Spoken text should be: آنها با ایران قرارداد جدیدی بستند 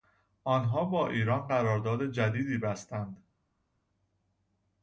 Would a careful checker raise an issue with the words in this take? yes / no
no